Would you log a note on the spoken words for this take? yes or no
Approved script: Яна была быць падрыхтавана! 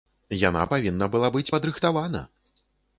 yes